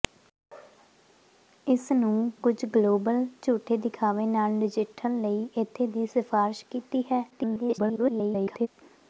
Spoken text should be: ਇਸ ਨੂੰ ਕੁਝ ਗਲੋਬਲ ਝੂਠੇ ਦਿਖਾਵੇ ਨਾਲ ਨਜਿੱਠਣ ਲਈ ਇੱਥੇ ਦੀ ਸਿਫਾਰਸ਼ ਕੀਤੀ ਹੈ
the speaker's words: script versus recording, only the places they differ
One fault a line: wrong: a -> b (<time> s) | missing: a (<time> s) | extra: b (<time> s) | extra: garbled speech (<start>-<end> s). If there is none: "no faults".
extra: garbled speech (7.3-8.7 s)